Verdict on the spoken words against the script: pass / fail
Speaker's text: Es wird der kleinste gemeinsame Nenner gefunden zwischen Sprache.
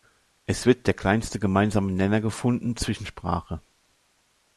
pass